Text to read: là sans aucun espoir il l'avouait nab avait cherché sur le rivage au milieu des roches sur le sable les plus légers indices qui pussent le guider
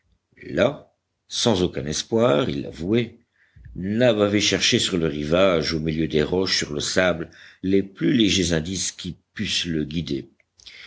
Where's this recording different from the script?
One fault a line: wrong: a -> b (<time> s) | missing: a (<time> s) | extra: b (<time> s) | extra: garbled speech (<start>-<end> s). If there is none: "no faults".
no faults